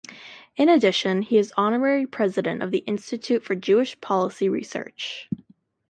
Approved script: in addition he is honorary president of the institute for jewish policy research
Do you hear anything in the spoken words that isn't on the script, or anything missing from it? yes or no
no